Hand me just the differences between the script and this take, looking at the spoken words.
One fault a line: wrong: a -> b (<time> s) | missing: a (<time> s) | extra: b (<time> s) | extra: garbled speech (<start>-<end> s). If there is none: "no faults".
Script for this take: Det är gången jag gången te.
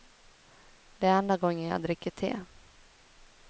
extra: enda (1.2 s)
wrong: gången -> dricker (1.8 s)